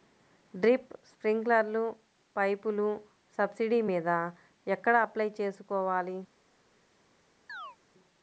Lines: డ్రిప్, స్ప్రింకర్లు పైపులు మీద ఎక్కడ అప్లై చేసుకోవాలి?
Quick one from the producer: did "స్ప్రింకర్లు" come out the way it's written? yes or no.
yes